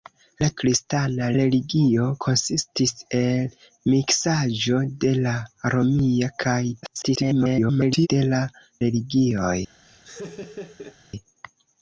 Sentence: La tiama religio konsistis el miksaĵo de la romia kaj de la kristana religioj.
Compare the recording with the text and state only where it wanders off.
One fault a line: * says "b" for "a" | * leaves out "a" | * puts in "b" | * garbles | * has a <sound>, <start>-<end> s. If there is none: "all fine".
* says "kristana" for "tiama"
* garbles
* leaves out "kristana"
* has a laugh, 9.8-11.0 s